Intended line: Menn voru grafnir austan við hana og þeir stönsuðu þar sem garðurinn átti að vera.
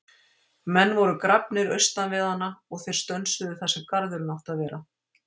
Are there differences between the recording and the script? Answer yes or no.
no